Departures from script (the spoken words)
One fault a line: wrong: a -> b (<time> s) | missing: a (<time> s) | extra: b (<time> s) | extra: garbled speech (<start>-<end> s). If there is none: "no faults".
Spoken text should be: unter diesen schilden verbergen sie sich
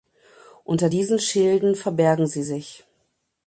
no faults